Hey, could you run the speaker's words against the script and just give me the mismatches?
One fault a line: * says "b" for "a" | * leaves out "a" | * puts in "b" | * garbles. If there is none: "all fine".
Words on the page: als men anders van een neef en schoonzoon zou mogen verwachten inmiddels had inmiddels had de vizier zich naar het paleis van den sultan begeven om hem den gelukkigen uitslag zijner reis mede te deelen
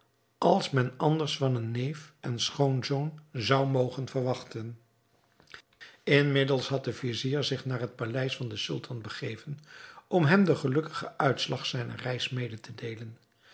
* leaves out "inmiddels had"